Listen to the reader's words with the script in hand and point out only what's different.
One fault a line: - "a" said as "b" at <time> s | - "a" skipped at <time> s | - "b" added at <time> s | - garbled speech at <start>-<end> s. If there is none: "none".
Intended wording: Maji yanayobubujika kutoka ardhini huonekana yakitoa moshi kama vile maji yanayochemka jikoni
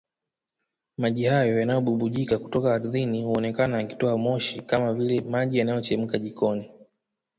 - "hayo" added at 1.2 s